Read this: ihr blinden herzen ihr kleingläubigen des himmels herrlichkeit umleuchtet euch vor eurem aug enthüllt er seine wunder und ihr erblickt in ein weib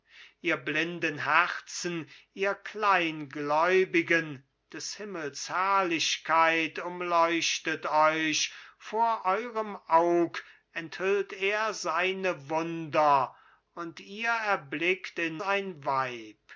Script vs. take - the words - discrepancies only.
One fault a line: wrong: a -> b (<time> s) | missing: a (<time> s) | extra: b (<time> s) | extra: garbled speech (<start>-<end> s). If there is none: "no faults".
no faults